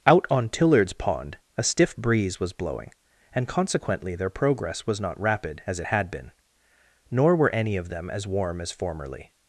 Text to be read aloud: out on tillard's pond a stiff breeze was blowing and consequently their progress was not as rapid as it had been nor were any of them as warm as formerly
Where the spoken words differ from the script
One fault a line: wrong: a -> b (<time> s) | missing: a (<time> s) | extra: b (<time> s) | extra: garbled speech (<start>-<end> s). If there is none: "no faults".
missing: as (5.2 s)